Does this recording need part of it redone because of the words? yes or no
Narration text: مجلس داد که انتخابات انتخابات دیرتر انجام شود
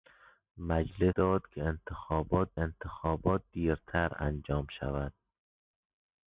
no